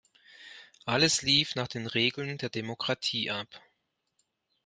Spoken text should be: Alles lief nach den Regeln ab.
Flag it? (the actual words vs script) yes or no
yes